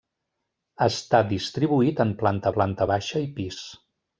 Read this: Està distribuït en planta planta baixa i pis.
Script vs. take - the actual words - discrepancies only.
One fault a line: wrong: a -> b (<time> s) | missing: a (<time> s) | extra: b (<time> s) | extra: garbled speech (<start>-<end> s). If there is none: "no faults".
no faults